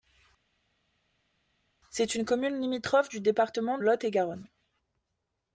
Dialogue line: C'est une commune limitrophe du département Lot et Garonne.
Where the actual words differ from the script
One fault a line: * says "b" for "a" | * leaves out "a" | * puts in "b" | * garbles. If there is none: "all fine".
all fine